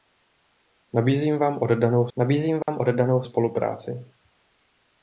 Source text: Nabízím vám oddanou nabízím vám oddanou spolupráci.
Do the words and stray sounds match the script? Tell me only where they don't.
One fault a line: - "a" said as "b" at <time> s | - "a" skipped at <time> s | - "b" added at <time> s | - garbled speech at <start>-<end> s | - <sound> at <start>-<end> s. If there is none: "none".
- dropout at 2.6-2.7 s